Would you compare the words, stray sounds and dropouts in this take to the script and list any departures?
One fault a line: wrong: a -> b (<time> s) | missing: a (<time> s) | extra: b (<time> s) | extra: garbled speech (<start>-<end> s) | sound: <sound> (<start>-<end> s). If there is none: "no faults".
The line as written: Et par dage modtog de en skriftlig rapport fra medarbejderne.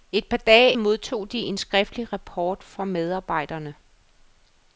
no faults